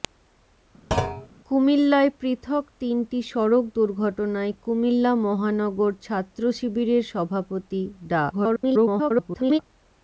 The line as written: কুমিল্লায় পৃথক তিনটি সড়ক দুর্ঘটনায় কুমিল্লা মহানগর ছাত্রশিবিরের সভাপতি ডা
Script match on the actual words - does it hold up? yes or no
no